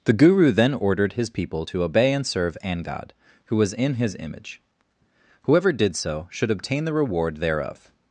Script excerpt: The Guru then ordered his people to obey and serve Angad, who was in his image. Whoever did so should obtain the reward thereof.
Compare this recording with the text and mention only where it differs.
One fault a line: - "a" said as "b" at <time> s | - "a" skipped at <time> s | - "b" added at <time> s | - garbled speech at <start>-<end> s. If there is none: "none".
none